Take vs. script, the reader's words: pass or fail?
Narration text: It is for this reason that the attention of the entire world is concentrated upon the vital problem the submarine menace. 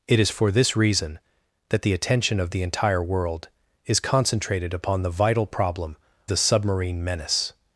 pass